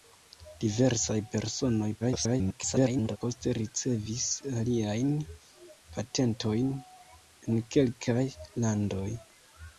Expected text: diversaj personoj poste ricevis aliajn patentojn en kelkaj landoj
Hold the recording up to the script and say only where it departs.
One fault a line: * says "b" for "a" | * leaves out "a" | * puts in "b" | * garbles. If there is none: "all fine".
* garbles